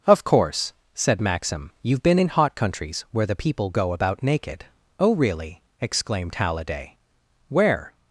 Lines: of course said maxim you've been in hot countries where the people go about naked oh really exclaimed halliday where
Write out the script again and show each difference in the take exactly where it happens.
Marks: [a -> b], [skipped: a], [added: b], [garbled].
of course said maxim you've been in hot countries where the people go about naked oh really exclaimed halliday where